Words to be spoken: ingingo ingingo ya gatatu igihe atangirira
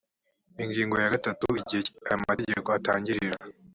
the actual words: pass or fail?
fail